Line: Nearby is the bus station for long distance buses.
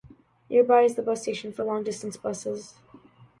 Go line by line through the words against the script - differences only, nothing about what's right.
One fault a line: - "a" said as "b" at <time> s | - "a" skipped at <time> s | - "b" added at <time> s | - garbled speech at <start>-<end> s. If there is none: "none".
none